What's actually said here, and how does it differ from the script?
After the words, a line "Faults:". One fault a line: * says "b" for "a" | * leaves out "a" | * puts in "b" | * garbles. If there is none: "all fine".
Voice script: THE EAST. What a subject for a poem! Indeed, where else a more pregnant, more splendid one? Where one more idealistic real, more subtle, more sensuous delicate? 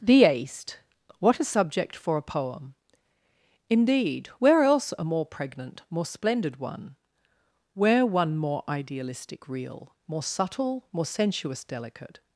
THE EAST. What a subject for a poem! Indeed, where else a more pregnant, more splendid one? Where one more idealistic real, more subtle, more sensuous delicate?
Faults:
all fine